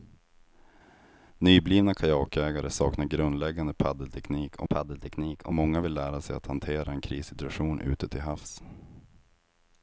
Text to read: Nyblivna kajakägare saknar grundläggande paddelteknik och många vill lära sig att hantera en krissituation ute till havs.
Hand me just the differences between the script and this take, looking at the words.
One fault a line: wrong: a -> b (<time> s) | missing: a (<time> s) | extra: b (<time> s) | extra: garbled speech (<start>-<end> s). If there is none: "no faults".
extra: paddelteknik och (4.6 s)